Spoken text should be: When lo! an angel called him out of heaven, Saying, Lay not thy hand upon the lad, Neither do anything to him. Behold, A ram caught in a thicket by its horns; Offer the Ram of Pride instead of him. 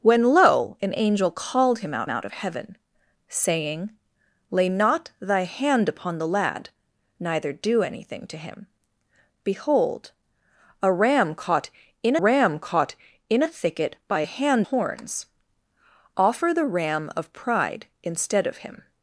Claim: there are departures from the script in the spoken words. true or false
true